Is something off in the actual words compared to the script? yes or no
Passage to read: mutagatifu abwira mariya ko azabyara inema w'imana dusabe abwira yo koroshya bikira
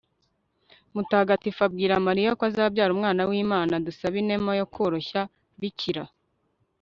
yes